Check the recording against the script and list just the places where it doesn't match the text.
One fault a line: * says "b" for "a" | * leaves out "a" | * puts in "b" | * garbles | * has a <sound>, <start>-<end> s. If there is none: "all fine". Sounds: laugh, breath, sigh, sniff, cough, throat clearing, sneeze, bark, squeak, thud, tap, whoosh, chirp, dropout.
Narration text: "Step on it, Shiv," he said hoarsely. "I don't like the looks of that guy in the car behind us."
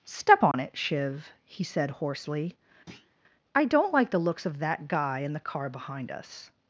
* has a dropout, 0.5-0.5 s
* has a thud, 2.9-3.1 s